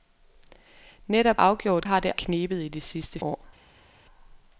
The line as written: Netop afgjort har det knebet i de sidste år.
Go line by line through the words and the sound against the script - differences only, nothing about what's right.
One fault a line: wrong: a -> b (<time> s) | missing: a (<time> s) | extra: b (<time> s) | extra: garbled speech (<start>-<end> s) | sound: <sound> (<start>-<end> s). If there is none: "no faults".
no faults